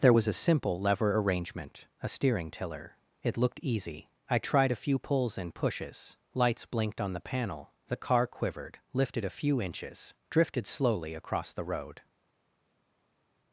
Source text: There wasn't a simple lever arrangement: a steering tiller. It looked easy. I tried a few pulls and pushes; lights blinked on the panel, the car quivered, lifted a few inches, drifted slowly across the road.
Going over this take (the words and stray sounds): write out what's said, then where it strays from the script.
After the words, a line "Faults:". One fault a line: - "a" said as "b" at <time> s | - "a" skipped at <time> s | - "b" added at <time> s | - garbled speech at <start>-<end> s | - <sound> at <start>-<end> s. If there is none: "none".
There was a simple lever arrangement: a steering tiller. It looked easy. I tried a few pulls and pushes; lights blinked on the panel, the car quivered, lifted a few inches, drifted slowly across the road.
Faults:
- "wasn't" said as "was" at 0.1 s